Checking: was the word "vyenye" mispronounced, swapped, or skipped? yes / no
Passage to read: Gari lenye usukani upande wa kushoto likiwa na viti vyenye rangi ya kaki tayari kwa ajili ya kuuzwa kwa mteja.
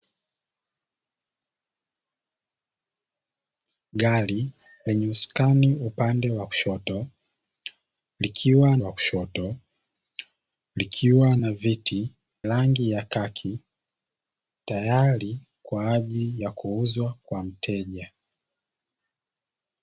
yes